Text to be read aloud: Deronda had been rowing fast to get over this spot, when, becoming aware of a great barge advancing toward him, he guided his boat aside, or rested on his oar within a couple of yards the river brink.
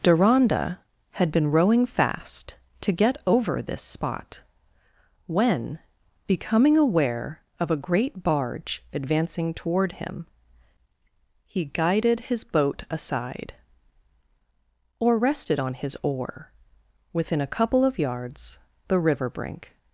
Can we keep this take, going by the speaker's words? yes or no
yes